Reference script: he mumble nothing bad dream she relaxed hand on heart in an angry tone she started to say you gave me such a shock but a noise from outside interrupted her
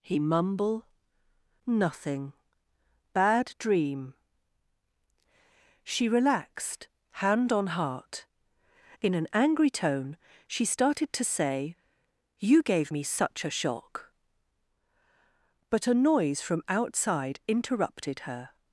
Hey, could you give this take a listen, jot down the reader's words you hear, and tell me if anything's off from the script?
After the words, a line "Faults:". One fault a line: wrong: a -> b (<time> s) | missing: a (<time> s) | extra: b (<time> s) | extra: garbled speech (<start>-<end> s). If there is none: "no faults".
he mumble nothing bad dream she relaxed hand on heart in an angry tone she started to say you gave me such a shock but a noise from outside interrupted her
Faults:
no faults